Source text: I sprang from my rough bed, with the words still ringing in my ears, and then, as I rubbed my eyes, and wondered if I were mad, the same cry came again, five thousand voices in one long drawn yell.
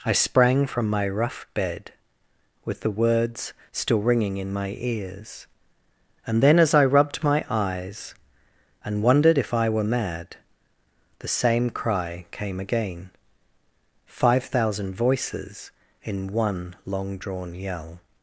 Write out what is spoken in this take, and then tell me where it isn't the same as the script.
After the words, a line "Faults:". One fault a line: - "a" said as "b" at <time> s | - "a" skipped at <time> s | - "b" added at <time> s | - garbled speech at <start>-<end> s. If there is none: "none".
I sprang from my rough bed, with the words still ringing in my ears, and then, as I rubbed my eyes, and wondered if I were mad, the same cry came again, five thousand voices in one long drawn yell.
Faults:
none